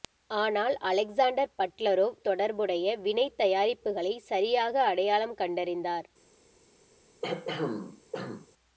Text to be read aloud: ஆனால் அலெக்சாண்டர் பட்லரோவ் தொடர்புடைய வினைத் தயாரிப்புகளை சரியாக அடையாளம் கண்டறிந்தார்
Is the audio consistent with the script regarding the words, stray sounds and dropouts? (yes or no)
no